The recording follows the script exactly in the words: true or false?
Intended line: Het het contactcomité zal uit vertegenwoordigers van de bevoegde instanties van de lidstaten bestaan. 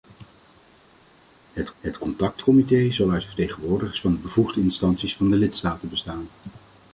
true